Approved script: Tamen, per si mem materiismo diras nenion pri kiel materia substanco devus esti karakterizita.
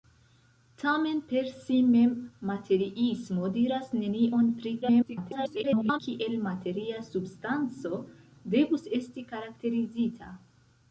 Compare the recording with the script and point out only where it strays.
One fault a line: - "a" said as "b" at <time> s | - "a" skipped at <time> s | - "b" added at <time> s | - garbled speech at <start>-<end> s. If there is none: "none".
- garbled speech at 4.8-6.0 s